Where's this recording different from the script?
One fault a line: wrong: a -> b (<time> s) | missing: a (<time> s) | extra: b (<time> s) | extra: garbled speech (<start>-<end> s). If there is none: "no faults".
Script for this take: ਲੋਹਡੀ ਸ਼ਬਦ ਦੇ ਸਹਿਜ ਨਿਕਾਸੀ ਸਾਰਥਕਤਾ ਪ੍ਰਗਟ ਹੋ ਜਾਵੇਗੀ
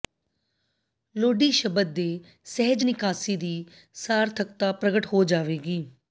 extra: ਦੀ (3.4 s)